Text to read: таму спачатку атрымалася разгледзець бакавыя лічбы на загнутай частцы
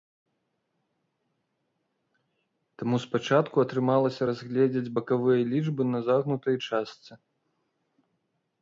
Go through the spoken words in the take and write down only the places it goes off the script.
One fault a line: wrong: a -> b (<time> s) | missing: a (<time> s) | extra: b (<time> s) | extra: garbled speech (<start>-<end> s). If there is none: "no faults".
no faults